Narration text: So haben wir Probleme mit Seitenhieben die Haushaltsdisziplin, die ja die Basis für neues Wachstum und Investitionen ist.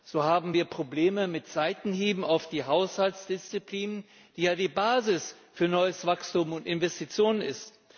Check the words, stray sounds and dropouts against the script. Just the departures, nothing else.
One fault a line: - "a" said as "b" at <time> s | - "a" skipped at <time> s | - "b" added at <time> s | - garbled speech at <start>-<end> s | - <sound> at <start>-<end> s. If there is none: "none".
- "auf" added at 2.2 s